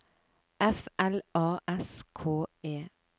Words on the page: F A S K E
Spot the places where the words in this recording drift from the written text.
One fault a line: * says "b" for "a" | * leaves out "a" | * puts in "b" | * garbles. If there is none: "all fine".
* puts in "L"